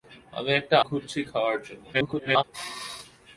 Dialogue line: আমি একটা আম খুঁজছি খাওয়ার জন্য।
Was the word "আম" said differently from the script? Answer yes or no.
yes